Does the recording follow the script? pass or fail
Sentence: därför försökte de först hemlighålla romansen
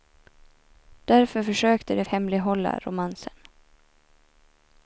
fail